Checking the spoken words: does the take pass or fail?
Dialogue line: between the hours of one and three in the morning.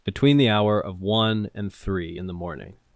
fail